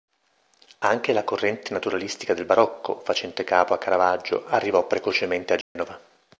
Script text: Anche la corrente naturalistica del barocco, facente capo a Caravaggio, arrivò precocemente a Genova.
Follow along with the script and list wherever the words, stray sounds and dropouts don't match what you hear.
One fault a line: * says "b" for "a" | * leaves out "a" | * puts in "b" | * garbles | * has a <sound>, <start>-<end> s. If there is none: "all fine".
* has a dropout, 5.6-5.8 s